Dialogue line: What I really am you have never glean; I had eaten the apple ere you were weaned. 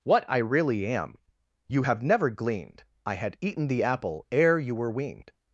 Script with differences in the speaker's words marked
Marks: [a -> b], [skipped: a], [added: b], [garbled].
What I really am you have never [glean; -> gleaned] I had eaten the apple ere you were weaned.